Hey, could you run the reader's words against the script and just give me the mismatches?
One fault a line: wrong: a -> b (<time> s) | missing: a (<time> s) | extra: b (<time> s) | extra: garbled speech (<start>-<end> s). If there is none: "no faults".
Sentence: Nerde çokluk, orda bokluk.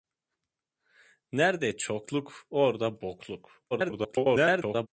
extra: garbled speech (3.7-4.9 s)